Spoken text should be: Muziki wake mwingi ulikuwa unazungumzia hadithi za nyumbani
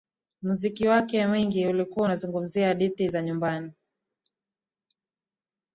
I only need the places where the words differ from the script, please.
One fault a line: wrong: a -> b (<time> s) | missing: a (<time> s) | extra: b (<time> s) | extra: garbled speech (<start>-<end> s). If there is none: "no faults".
no faults